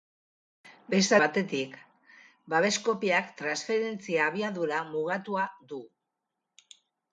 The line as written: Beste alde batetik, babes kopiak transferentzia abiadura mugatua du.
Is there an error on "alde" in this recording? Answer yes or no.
yes